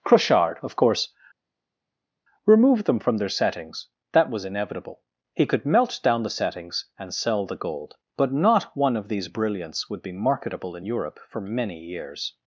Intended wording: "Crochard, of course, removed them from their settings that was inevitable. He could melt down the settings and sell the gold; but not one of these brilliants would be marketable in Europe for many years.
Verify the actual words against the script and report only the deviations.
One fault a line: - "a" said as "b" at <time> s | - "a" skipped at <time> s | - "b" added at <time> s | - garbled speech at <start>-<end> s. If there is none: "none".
none